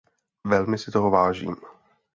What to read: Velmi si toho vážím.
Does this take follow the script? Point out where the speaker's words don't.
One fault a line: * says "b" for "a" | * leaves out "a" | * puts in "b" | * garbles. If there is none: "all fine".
all fine